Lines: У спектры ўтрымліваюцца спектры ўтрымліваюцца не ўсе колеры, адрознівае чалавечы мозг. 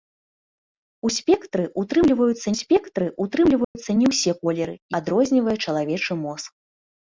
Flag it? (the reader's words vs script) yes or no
no